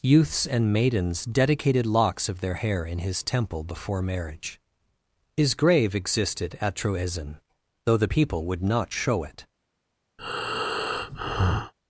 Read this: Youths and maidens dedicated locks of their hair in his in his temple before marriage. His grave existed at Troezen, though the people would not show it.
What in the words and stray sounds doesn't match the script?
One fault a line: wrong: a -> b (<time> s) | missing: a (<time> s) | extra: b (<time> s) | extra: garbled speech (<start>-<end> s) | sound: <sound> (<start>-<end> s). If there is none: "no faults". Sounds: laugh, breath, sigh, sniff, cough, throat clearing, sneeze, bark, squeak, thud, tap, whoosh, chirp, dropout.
missing: in his (3.2 s)
sound: breath (10.2-11.7 s)